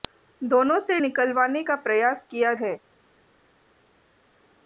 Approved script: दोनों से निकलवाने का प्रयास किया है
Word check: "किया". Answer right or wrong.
right